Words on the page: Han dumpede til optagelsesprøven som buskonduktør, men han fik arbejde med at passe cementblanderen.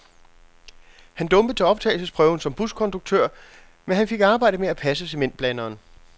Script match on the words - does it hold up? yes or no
yes